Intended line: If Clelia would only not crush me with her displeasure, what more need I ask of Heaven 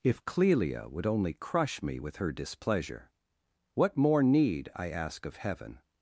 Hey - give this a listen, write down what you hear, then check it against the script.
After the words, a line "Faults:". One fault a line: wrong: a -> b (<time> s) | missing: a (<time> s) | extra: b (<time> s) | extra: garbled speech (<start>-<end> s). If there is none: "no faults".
If Clelia would only crush me with her displeasure, what more need I ask of Heaven
Faults:
missing: not (1.3 s)